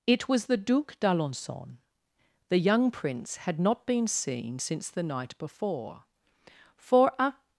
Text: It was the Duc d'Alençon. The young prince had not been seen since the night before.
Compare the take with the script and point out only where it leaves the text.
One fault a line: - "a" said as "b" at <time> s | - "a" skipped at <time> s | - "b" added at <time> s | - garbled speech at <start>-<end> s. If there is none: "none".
- "For a" added at 6.8 s